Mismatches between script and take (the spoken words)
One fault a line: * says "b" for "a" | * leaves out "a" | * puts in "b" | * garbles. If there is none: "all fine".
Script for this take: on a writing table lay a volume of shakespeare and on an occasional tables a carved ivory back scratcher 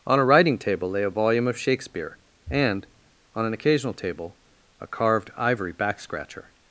* says "table" for "tables"